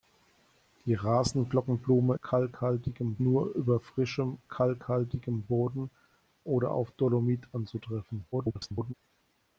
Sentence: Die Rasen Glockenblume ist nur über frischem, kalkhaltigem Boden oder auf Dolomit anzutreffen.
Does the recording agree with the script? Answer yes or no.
no